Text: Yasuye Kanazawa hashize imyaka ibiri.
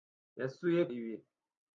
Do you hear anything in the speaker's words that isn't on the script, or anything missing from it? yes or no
yes